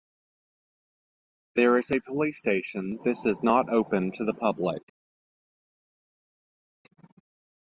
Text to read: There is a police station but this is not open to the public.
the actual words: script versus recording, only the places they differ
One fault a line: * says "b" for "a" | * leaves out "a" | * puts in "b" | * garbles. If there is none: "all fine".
* leaves out "but"